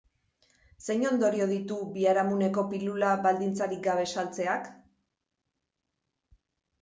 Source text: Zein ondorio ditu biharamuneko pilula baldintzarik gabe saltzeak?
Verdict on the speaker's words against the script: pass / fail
pass